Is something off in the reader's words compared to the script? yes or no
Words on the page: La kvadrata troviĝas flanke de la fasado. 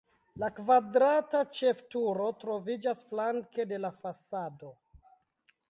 yes